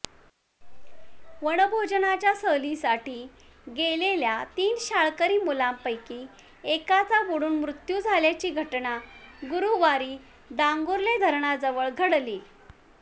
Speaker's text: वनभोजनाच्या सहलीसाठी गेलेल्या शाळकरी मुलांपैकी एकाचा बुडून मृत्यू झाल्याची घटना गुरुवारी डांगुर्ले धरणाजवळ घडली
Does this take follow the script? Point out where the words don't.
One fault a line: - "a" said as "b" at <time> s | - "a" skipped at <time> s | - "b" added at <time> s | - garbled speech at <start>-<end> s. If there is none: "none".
- "तीन" added at 4.6 s